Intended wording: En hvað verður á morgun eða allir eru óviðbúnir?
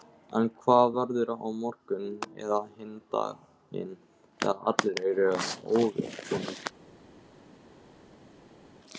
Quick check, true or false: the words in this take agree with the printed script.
false